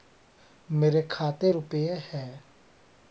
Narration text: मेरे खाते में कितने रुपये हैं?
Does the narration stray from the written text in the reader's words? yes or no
yes